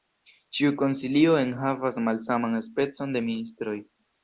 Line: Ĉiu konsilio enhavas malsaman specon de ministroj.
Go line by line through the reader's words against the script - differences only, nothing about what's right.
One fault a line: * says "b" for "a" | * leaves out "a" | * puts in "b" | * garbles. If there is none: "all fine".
all fine